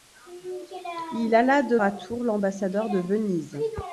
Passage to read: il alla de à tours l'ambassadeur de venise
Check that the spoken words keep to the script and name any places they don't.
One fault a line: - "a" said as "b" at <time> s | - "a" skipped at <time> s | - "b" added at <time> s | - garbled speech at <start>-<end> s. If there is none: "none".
none